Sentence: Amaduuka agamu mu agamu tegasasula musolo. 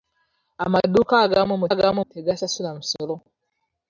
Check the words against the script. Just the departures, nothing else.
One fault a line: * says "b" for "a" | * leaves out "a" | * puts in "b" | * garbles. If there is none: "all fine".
all fine